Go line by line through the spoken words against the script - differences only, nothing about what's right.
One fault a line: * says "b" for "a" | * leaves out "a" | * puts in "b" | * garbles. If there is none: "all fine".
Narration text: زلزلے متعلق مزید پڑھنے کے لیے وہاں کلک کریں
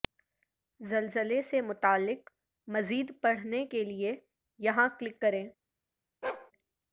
* puts in "سے"
* says "یہاں" for "وہاں"